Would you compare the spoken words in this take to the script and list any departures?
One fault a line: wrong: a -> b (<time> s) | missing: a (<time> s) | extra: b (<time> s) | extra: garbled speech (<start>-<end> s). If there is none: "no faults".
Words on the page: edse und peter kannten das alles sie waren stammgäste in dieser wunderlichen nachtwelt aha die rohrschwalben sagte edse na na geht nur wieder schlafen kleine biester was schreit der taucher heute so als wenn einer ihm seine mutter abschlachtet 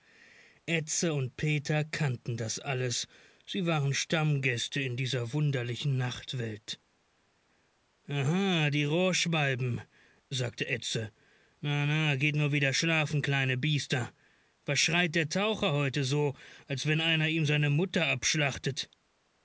no faults